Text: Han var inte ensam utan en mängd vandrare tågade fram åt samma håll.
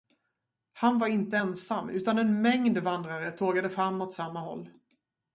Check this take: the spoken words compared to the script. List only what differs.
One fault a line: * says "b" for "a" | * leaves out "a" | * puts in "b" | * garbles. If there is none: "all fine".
all fine